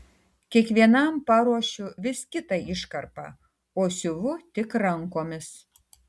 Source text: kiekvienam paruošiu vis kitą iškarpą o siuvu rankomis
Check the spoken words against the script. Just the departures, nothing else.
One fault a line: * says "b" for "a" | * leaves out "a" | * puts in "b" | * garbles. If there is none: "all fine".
* puts in "tik"